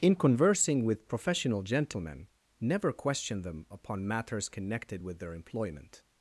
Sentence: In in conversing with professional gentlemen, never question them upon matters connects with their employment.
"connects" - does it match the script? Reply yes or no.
no